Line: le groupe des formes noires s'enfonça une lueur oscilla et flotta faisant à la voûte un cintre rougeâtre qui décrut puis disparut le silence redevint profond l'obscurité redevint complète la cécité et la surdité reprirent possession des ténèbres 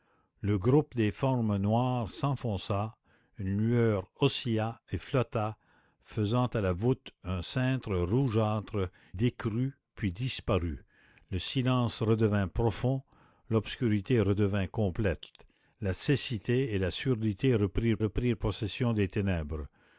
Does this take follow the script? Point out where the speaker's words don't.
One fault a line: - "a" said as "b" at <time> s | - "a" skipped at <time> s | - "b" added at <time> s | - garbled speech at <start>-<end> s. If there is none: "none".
- "qui" skipped at 8.9 s
- "reprirent" added at 18.0 s